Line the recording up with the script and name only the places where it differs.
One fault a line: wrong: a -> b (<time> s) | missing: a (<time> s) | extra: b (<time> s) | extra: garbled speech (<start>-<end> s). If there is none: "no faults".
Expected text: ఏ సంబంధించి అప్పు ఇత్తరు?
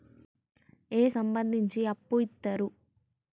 no faults